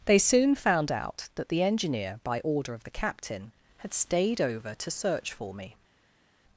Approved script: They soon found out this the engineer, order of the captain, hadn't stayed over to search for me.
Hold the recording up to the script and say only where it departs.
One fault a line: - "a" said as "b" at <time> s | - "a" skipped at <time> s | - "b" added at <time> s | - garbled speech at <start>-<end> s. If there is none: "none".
- "this" said as "that" at 1.4 s
- "by" added at 2.2 s
- "hadn't" said as "had" at 3.8 s